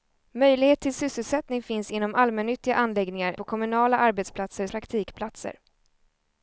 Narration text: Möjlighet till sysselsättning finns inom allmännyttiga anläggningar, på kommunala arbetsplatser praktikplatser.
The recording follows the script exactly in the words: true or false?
true